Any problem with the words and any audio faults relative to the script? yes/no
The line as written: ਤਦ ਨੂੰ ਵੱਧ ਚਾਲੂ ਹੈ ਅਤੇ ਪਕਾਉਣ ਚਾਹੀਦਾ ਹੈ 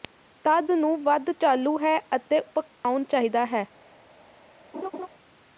yes